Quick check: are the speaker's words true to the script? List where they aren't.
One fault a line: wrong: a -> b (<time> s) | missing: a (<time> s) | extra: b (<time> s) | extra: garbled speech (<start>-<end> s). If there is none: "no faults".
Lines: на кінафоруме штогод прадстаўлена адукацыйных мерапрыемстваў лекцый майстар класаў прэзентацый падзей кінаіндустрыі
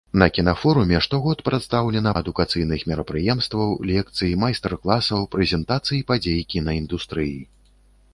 no faults